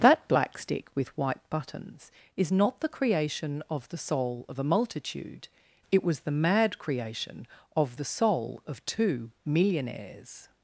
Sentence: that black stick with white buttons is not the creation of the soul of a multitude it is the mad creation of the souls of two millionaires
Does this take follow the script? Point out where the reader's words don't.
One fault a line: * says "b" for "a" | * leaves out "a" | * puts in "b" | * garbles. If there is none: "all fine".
* says "was" for "is"
* says "soul" for "souls"